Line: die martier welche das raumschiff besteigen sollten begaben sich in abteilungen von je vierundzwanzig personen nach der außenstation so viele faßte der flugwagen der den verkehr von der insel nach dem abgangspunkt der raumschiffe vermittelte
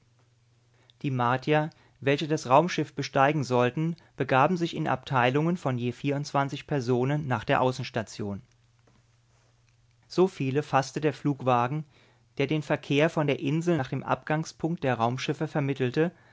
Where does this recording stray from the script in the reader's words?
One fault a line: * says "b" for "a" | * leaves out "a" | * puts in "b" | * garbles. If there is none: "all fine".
all fine